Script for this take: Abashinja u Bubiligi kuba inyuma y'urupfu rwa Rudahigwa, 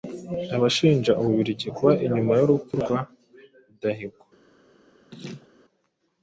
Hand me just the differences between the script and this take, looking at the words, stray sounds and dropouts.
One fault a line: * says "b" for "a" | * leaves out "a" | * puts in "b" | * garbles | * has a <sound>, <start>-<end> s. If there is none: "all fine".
* has a laugh, 5.1-5.5 s